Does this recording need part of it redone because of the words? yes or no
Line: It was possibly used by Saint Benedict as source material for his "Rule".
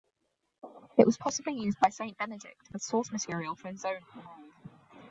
yes